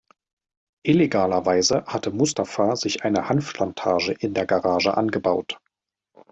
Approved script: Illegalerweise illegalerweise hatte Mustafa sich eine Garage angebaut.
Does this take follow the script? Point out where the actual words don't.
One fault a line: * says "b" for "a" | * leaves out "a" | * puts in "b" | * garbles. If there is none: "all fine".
* leaves out "illegalerweise"
* puts in "Hanfplantage in der"